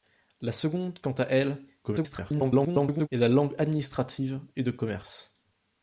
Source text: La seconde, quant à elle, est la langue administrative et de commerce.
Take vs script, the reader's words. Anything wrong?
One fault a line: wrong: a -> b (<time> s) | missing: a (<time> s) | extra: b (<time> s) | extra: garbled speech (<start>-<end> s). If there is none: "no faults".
extra: garbled speech (1.8-3.1 s)